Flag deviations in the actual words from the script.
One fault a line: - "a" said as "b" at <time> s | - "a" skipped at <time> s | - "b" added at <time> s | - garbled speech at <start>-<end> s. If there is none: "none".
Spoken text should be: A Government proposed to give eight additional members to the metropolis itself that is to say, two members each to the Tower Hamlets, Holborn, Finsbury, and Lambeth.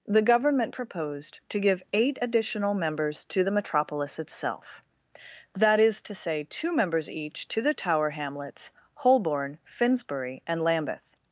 - "A" said as "The" at 0.1 s